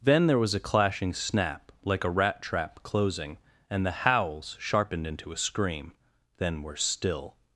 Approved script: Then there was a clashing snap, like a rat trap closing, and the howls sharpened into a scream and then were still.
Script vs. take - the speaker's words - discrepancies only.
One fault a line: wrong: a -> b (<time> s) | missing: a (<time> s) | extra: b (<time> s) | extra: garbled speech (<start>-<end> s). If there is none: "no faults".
missing: and (5.9 s)